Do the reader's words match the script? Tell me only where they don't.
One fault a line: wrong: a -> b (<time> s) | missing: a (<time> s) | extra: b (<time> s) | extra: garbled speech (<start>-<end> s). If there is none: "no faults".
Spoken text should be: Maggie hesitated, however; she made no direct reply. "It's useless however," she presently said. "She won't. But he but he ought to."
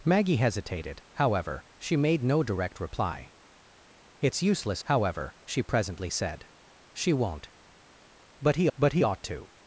no faults